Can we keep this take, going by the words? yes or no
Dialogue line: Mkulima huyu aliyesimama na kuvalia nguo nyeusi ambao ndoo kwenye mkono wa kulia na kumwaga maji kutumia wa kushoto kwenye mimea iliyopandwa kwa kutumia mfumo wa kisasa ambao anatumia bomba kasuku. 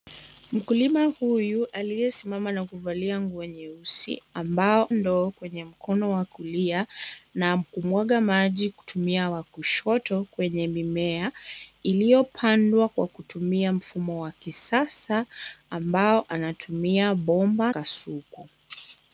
yes